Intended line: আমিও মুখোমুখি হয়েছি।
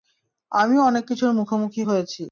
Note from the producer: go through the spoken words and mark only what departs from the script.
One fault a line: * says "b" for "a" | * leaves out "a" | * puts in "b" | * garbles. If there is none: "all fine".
* puts in "অনেক কিছুর"